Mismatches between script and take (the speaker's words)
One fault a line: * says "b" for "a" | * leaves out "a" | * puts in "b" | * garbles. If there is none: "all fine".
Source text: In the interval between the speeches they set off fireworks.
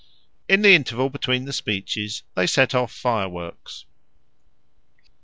all fine